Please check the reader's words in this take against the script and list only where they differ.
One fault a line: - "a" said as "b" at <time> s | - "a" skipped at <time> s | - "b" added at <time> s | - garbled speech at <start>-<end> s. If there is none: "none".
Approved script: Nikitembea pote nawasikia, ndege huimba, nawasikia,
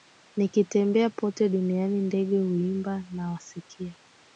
- "nawasikia" said as "duniani" at 1.5 s